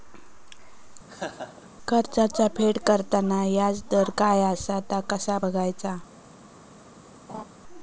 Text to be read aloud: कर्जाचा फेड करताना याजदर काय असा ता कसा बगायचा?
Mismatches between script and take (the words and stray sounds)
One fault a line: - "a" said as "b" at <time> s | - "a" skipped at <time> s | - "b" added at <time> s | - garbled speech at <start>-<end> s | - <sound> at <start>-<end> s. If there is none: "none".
- laugh at 1.1-1.7 s
- laugh at 7.3-7.4 s